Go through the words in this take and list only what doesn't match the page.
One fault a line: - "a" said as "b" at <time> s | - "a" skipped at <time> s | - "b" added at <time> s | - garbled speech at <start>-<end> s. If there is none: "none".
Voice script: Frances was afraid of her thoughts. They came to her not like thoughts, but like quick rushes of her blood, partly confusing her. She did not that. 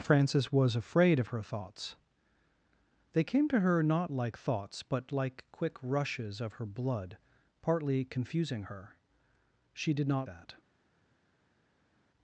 none